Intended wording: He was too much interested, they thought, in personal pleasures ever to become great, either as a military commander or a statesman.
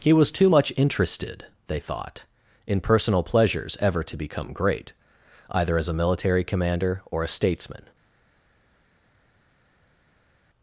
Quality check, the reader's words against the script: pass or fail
pass